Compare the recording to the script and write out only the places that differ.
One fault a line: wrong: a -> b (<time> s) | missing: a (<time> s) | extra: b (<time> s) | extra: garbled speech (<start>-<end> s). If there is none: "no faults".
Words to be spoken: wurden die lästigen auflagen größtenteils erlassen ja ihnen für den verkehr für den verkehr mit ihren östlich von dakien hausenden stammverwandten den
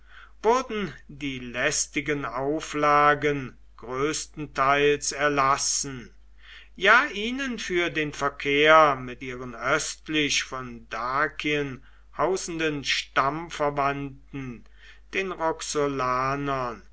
missing: für den verkehr (8.9 s)